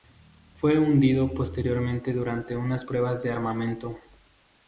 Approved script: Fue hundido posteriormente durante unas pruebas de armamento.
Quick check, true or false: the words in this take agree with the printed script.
true